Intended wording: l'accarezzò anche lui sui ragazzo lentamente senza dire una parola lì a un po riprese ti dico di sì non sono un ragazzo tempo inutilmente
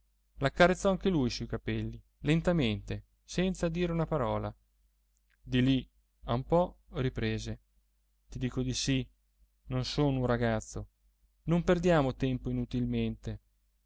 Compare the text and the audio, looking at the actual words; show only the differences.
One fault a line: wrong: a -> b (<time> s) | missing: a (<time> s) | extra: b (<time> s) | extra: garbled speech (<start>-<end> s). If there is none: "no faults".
wrong: ragazzo -> capelli (1.5 s)
extra: di (5.4 s)
extra: non perdiamo (11.4 s)